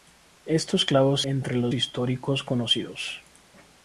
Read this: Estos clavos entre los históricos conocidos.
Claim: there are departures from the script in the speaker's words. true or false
false